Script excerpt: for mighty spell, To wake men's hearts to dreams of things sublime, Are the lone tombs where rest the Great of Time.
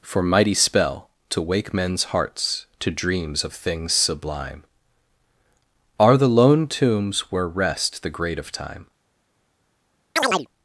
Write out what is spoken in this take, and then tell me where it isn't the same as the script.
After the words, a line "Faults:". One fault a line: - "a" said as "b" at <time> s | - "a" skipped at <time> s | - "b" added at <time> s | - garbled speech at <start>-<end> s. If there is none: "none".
for mighty spell, To wake men's hearts to dreams of things sublime, Are the lone tombs where rest the Great of Time.
Faults:
none